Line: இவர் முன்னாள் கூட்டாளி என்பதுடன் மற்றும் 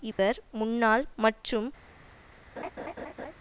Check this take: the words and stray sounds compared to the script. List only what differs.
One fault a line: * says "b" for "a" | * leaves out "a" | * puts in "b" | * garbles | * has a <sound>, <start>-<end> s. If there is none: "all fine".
* has a dropout, 0.1-0.2 s
* leaves out "கூட்டாளி என்பதுடன்"
* has a laugh, 2.6-3.3 s